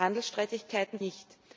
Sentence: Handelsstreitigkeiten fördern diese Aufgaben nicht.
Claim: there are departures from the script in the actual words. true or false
true